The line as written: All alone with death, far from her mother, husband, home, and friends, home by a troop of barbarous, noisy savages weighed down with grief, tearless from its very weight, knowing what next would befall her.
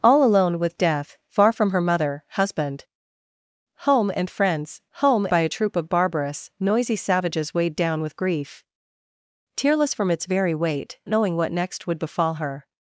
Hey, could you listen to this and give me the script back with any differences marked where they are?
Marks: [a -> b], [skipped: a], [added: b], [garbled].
All alone with death, far from her mother, husband, home, and friends, home by a troop of barbarous, noisy savages weighed down with grief, tearless from its very weight, knowing what next would befall her.